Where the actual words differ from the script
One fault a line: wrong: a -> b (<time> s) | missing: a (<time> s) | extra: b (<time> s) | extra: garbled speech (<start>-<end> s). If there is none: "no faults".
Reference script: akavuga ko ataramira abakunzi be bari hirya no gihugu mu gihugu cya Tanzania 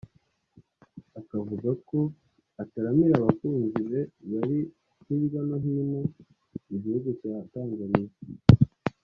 wrong: gihugu -> hino (5.6 s)